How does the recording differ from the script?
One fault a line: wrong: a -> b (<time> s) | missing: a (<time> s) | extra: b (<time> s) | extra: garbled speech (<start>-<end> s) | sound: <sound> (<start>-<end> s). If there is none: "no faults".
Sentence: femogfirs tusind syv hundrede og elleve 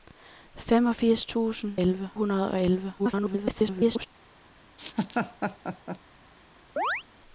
wrong: syv -> elleve (1.8 s)
extra: garbled speech (3.0-4.1 s)
sound: laugh (4.8-6.0 s)
sound: chirp (6.8-7.0 s)